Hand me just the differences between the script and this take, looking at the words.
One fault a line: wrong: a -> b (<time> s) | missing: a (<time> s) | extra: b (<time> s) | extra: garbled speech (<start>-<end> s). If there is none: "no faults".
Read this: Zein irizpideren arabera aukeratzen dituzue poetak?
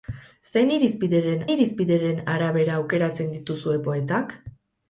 extra: irizpideren (1.5 s)